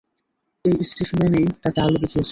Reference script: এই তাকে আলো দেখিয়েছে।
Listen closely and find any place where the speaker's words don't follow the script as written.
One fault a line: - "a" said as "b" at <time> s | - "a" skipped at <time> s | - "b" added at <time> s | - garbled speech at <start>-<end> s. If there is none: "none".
- "স্টিফম্যানই" added at 0.8 s